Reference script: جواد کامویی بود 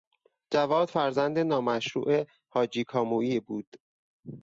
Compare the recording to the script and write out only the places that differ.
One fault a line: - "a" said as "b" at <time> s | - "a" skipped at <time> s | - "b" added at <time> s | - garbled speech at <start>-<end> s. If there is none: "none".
- "فرزند نامشروع حاجی" added at 0.9 s